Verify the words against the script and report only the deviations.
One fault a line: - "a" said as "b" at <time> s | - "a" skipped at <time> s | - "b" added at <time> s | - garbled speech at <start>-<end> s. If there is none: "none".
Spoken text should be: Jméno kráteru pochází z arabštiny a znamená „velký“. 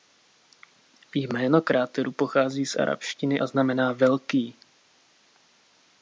none